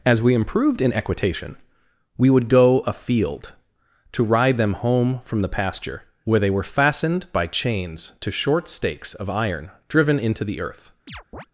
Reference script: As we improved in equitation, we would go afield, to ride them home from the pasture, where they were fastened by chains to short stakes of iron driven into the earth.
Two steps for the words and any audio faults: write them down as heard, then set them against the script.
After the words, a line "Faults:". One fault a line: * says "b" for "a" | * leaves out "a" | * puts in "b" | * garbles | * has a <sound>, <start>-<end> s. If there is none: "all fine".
As we improved in equitation, we would go afield, to ride them home from the pasture, where they were fastened by chains to short stakes of iron driven into the earth.
Faults:
* has a chirp, 11.1-11.5 s